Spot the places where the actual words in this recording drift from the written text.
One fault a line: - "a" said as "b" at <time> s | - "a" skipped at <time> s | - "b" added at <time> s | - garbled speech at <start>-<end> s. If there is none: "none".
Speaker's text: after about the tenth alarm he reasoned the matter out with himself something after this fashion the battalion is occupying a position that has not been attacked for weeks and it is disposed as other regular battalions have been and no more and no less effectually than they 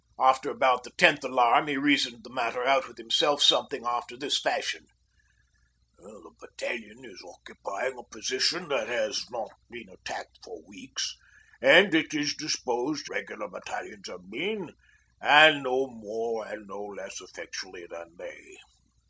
- "as other" skipped at 13.1 s